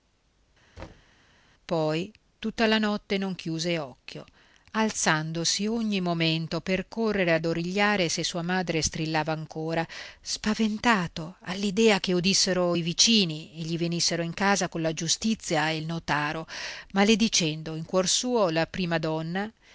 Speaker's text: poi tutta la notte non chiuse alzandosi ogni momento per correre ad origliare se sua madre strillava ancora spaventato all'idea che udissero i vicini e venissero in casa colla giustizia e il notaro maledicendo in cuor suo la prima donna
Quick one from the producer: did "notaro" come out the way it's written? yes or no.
yes